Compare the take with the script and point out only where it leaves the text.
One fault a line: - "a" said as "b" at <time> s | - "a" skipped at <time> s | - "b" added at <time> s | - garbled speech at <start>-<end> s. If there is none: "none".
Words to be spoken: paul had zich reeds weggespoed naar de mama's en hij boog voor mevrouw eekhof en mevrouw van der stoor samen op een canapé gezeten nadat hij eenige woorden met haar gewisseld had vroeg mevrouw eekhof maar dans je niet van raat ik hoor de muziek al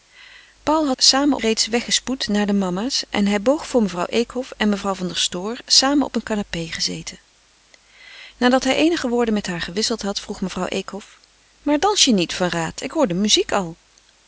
- "zich" said as "samen" at 1.0 s